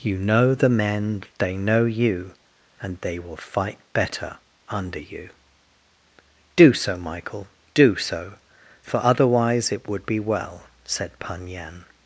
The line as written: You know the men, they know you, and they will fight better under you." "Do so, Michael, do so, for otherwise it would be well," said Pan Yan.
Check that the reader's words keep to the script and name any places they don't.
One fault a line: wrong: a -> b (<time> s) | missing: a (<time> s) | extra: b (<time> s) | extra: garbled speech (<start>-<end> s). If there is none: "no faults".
no faults